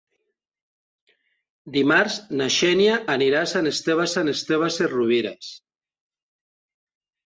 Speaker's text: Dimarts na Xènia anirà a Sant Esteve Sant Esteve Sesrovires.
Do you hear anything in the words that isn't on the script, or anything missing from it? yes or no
no